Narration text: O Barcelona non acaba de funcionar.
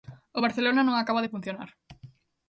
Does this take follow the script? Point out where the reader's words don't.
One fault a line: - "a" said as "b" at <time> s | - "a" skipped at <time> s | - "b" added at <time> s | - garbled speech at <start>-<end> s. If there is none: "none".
none